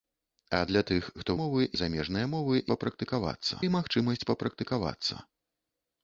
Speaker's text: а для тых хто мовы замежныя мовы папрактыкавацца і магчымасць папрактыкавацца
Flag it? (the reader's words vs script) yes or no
no